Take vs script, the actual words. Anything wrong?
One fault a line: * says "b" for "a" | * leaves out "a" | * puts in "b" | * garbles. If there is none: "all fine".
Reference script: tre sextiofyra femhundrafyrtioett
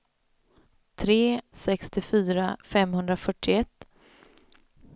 all fine